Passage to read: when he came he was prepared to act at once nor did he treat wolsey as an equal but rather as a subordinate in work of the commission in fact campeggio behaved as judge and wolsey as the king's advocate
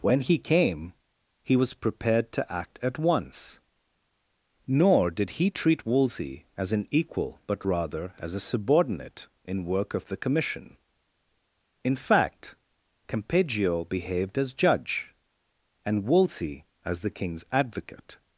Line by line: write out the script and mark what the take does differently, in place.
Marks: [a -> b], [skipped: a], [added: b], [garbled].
when he came he was prepared to act at once nor did he treat wolsey as an equal but rather as a subordinate in work of the commission in fact campeggio behaved as judge and wolsey as the king's advocate